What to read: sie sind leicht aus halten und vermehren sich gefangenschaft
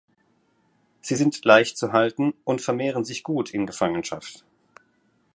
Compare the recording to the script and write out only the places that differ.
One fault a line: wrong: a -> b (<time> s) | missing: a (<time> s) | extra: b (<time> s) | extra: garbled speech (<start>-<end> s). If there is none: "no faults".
wrong: aus -> zu (1.8 s)
extra: gut in (3.2 s)